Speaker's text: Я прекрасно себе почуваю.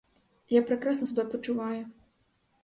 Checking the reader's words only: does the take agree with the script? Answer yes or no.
yes